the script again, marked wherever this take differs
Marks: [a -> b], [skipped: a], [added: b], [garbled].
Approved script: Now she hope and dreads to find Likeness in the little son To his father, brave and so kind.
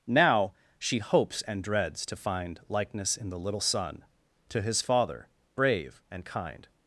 Now she [hope -> hopes] and dreads to find Likeness in the little son To his father, brave and [skipped: so] kind.